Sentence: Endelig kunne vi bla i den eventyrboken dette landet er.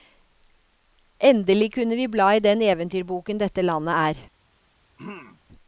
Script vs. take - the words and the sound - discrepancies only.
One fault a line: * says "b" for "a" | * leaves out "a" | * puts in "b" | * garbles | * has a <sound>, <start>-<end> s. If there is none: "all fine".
* has a throat clearing, 5.0-5.4 s